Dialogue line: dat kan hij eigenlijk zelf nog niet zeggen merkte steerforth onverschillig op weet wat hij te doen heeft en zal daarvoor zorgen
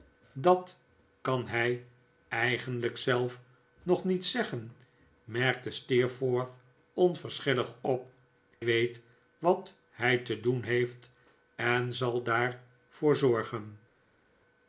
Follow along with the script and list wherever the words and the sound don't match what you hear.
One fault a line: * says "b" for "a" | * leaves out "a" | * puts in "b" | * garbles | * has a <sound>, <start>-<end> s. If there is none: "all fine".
all fine